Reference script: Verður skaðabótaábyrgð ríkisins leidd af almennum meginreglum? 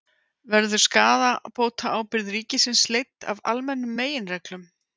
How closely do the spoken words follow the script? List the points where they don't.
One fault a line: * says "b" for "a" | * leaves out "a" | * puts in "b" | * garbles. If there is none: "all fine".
all fine